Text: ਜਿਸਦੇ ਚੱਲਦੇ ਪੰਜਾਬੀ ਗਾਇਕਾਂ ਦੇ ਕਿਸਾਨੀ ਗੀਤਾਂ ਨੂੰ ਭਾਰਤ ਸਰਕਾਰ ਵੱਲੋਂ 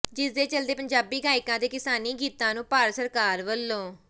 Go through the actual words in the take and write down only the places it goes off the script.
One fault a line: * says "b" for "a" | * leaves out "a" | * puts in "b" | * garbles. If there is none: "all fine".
all fine